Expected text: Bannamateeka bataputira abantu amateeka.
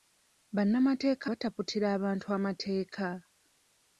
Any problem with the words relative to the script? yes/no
no